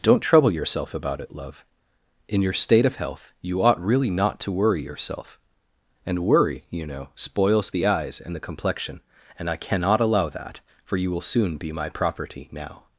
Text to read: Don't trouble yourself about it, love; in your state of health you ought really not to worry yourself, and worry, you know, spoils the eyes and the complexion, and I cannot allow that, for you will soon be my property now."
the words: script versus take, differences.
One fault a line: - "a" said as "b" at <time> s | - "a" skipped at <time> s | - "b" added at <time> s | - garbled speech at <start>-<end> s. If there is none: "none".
none